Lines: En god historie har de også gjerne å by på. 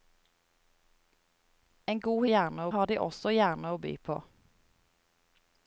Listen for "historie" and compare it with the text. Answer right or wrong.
wrong